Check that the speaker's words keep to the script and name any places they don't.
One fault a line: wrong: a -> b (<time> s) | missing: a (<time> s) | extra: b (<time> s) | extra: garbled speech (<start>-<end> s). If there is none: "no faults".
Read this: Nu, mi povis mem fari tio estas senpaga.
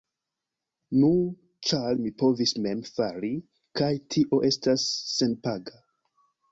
extra: ĉar (1.7 s)
extra: kaj (3.8 s)